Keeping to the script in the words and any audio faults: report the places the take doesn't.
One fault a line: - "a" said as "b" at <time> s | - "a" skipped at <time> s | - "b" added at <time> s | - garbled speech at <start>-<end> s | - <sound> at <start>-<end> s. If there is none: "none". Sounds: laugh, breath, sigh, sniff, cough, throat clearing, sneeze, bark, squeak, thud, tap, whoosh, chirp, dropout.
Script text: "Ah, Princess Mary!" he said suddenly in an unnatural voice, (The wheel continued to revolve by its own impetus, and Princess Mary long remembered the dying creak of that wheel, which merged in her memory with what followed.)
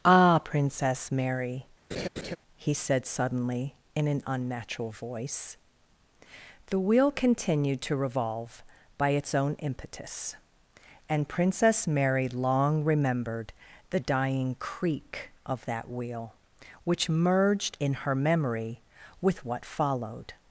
- laugh at 1.9-2.4 s